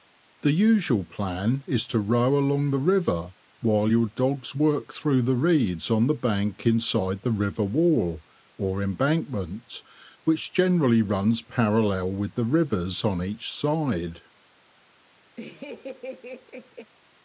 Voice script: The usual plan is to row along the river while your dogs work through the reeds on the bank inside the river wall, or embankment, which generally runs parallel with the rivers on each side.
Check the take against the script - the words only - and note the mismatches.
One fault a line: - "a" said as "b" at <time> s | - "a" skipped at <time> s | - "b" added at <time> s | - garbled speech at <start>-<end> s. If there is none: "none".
none